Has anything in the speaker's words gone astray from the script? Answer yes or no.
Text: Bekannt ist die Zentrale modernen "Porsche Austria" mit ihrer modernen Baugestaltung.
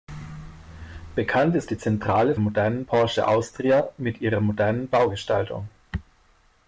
no